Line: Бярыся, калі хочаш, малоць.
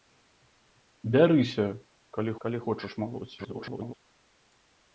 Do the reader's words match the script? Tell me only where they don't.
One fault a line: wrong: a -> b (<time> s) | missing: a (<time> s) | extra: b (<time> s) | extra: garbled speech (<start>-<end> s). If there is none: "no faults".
extra: калі (2.4 s)
extra: garbled speech (3.4-3.9 s)